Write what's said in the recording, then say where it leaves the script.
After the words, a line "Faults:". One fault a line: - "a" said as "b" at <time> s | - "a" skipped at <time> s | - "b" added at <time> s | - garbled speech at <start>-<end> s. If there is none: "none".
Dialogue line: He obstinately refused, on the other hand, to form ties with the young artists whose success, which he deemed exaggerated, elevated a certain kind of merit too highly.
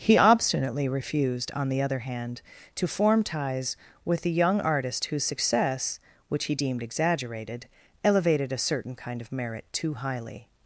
He obstinately refused, on the other hand, to form ties with the young artist whose success, which he deemed exaggerated, elevated a certain kind of merit too highly.
Faults:
- "artists" said as "artist" at 4.6 s